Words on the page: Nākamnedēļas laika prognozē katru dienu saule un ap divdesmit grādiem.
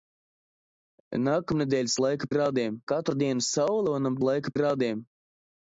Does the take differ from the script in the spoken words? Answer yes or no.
yes